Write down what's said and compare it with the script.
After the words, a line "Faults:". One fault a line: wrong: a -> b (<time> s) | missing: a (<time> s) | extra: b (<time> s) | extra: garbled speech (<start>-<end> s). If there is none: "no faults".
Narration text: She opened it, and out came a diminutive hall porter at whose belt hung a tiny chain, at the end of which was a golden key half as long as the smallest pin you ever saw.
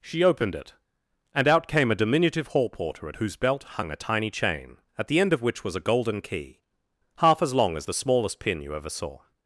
She opened it, and out came a diminutive hall porter at whose belt hung a tiny chain, at the end of which was a golden key half as long as the smallest pin you ever saw.
Faults:
no faults